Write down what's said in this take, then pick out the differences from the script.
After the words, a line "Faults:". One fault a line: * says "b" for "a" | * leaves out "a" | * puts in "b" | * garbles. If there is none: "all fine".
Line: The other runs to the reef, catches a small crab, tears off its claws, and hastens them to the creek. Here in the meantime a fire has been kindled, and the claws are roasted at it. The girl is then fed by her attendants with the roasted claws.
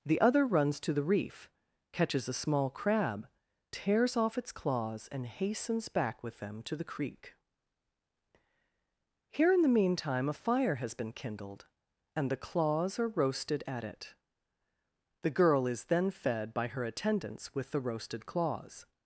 The other runs to the reef, catches a small crab, tears off its claws, and hastens back with them to the creek. Here in the meantime a fire has been kindled, and the claws are roasted at it. The girl is then fed by her attendants with the roasted claws.
Faults:
* puts in "back with"